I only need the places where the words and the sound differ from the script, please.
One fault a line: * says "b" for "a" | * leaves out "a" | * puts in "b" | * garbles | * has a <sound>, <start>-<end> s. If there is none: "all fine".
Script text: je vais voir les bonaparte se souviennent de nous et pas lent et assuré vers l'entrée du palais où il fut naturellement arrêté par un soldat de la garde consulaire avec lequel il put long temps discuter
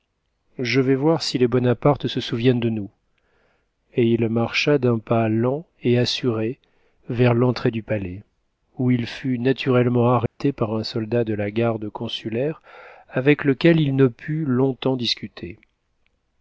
* puts in "si"
* puts in "il marcha d'un"
* has a dropout, 10.3-10.4 s
* puts in "ne"